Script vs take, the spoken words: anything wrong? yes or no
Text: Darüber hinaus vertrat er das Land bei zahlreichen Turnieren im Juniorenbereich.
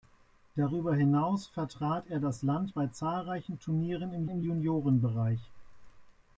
yes